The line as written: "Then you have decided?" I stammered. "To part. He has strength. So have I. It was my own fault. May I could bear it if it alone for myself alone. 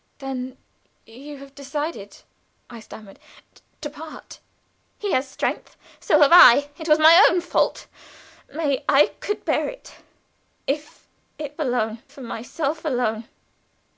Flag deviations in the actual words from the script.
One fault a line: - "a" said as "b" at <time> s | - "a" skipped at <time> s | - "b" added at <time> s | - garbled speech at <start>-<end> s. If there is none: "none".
none